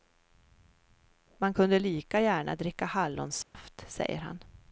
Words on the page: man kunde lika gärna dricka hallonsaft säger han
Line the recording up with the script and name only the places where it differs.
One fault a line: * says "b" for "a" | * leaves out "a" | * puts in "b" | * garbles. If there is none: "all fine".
all fine